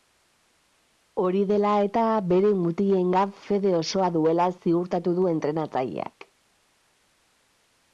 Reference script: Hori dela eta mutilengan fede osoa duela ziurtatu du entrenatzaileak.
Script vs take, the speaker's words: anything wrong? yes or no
yes